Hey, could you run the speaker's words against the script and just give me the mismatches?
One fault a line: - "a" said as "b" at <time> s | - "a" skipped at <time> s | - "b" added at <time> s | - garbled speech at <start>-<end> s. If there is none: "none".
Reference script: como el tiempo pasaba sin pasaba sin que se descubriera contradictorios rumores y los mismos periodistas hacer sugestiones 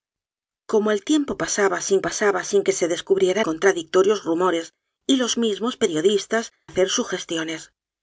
none